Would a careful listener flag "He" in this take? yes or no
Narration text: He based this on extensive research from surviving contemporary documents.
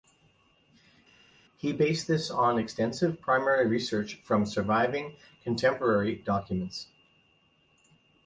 no